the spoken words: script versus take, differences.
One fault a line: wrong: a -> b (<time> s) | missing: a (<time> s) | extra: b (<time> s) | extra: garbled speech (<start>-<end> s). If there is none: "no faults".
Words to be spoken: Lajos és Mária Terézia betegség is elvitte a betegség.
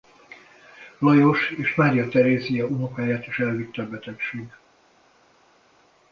wrong: betegség -> unokáját (2.6 s)